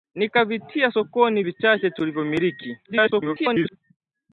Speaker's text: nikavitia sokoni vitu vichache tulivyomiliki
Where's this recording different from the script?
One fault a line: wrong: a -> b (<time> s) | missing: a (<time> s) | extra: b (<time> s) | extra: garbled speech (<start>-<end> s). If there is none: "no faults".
missing: vitu (1.4 s)
extra: garbled speech (2.8-3.8 s)